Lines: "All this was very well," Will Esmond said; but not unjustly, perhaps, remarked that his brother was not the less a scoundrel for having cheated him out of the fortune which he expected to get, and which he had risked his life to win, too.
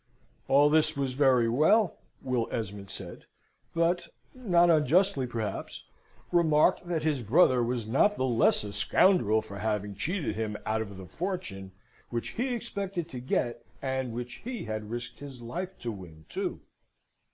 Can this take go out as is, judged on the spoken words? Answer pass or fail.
pass